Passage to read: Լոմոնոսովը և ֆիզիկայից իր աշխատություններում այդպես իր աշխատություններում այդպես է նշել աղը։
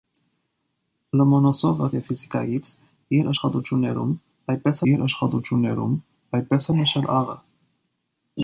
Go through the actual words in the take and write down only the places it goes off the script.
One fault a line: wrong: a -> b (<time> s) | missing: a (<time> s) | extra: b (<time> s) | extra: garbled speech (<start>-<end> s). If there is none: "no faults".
no faults